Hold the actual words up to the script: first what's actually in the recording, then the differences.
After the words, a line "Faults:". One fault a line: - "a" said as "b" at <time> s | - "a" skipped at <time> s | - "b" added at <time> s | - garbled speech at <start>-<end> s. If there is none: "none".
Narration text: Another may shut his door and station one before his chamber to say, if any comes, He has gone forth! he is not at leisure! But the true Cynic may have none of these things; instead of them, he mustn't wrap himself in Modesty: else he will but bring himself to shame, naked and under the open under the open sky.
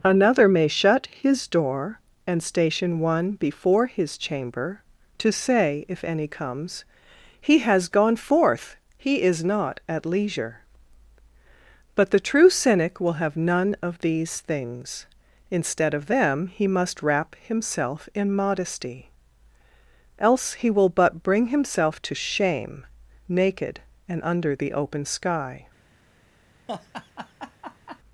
Another may shut his door and station one before his chamber to say, if any comes, He has gone forth! he is not at leisure! But the true Cynic will have none of these things; instead of them, he must wrap himself in Modesty: else he will but bring himself to shame, naked and under the open sky.
Faults:
- "may" said as "will" at 13.0 s
- "mustn't" said as "must" at 16.7 s
- "under the open" skipped at 25.1 s